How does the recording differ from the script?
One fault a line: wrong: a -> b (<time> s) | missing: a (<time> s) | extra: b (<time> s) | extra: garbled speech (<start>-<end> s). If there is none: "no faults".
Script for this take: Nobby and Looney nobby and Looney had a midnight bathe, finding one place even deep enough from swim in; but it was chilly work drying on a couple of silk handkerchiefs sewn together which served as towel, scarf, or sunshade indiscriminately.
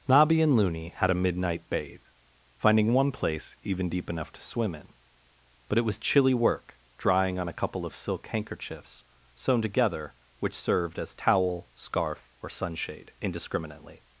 missing: nobby and Looney (0.9 s)
wrong: from -> to (4.3 s)